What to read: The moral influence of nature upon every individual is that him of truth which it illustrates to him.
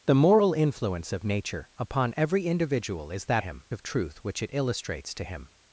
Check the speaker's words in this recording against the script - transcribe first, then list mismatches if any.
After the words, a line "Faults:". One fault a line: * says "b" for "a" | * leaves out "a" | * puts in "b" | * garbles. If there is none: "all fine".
The moral influence of nature upon every individual is that him of truth which it illustrates to him.
Faults:
all fine